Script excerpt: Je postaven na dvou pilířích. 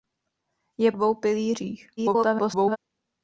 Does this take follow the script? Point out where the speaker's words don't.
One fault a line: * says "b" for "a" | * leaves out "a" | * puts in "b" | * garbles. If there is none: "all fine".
* leaves out "postaven na"
* garbles